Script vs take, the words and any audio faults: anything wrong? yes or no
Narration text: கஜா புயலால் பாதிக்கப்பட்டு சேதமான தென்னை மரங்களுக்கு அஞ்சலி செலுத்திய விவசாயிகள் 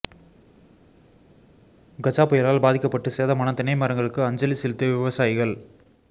no